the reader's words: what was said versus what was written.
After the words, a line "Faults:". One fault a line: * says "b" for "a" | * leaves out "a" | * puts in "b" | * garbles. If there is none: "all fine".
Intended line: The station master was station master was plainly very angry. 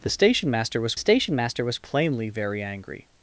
The station master was station master was plainly very angry.
Faults:
all fine